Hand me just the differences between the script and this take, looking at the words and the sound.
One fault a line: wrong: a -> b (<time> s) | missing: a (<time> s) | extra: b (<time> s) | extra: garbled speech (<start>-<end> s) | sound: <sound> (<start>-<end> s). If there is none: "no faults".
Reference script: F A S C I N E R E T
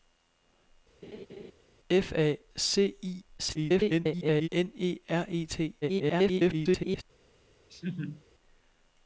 sound: laugh (1.0-1.5 s)
missing: S (2.4 s)
extra: garbled speech (3.4-4.5 s)
extra: garbled speech (5.8-7.0 s)
sound: laugh (7.7-8.2 s)